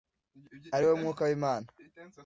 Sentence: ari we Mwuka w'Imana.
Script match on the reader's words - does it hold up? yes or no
yes